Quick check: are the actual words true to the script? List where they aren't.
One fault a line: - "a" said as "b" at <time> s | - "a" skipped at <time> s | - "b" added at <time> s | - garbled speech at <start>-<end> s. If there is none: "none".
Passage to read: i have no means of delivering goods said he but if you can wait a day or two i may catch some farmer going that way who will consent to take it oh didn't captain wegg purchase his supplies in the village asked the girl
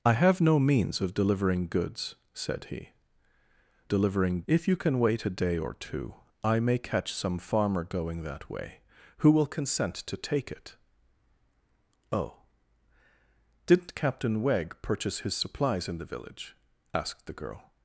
- "but" said as "delivering" at 3.9 s